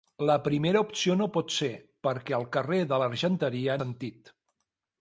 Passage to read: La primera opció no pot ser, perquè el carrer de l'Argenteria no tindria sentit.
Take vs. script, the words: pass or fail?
fail